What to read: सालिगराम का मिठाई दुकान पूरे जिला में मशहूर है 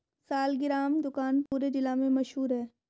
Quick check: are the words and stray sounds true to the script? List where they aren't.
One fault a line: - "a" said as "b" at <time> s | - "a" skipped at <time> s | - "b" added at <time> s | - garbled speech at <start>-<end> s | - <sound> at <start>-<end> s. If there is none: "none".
- "का मिठाई" skipped at 1.0 s
- dropout at 1.5-1.5 s